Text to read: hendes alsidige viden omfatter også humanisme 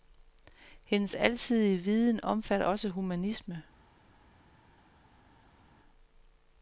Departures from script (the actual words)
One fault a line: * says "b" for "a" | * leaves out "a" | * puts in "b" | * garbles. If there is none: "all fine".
all fine